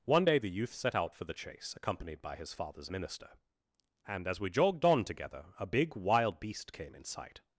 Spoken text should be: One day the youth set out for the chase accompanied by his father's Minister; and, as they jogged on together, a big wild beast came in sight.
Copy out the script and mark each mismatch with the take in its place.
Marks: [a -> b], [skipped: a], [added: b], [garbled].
One day the youth set out for the chase accompanied by his father's Minister; and, as [they -> we] jogged on together, a big wild beast came in sight.